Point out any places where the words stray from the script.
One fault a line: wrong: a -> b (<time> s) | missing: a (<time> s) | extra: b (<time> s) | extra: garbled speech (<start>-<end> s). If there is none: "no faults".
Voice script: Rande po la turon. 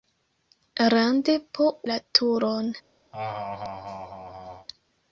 no faults